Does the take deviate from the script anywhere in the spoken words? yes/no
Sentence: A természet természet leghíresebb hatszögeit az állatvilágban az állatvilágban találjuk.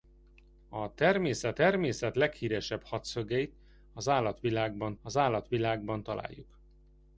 no